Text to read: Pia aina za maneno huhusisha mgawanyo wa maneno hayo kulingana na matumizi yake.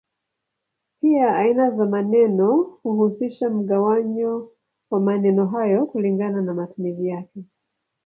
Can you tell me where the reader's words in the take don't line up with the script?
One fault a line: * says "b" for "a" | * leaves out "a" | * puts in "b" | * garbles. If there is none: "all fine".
all fine